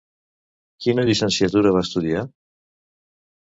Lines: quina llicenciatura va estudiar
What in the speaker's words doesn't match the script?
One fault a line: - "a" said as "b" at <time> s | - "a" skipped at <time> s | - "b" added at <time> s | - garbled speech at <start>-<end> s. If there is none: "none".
none